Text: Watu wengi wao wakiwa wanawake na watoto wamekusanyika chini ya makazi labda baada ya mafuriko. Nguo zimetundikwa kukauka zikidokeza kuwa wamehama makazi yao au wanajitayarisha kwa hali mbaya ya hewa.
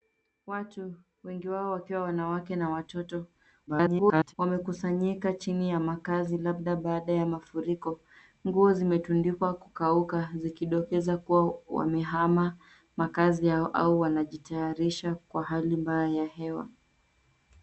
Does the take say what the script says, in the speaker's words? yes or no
no